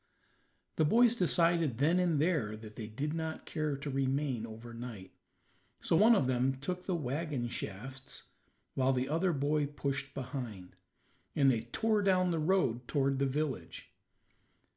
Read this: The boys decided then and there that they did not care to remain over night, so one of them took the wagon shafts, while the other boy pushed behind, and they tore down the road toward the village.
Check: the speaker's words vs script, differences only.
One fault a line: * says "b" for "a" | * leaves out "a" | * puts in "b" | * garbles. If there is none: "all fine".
all fine